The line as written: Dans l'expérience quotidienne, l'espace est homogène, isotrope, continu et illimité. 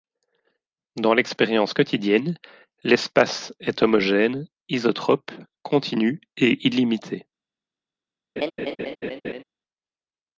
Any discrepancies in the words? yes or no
no